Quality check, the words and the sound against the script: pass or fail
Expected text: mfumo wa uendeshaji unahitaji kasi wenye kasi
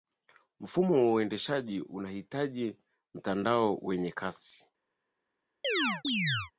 fail